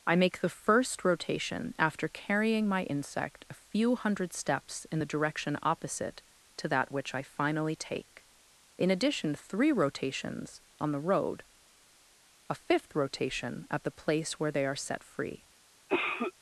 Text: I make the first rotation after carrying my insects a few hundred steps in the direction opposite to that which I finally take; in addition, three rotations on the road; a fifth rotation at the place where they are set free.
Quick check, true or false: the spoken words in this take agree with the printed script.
false